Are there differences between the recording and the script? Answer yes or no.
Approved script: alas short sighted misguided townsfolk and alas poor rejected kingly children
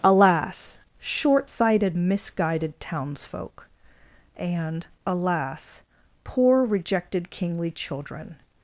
no